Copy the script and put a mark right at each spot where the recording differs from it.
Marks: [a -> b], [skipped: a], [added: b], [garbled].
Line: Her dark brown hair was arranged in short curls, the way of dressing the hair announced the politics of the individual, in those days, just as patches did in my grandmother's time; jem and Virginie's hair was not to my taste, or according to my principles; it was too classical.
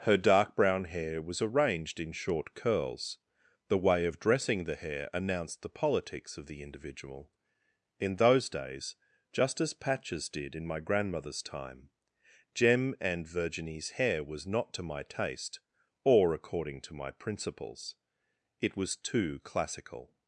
Her dark brown hair was arranged in short curls, the way of dressing the hair announced the politics of the individual, in those days, just as patches did in my grandmother's time; jem and Virginie's hair was not to my taste, or according to my principles; it was too classical.